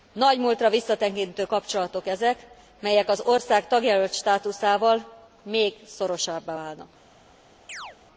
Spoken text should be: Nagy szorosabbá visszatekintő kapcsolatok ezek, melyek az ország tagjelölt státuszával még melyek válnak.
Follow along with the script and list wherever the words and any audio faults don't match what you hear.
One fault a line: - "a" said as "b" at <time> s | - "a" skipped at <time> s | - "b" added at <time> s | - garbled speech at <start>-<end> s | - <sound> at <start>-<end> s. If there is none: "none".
- "szorosabbá" said as "múltra" at 0.4 s
- "melyek" said as "szorosabbá" at 5.9 s
- chirp at 7.7-8.0 s